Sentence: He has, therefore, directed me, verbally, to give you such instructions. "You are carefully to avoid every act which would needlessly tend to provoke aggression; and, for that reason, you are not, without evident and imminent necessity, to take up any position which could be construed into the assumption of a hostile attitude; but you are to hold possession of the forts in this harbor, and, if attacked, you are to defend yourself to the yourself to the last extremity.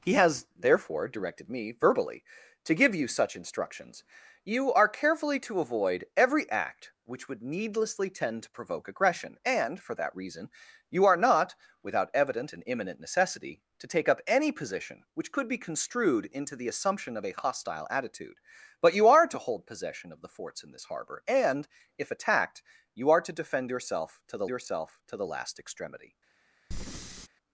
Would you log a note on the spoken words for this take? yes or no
no